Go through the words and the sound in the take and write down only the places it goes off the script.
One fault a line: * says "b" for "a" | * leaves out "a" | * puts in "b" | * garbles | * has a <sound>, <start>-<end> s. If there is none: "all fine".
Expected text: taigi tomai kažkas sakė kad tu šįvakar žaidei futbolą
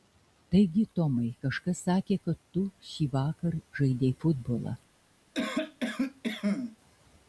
* has a cough, 5.3-6.8 s